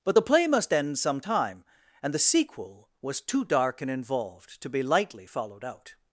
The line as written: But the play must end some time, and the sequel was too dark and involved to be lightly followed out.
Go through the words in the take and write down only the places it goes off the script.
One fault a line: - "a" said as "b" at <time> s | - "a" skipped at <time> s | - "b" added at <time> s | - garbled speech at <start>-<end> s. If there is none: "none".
none